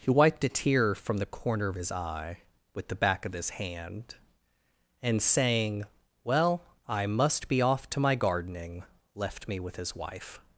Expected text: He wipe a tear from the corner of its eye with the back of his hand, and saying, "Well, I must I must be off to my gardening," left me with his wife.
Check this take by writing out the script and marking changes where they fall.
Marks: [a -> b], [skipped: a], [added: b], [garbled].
He [wipe -> wiped] a tear from the corner of [its -> his] eye with the back of his hand, and saying, "Well, I must [skipped: I must] be off to my gardening," left me with his wife.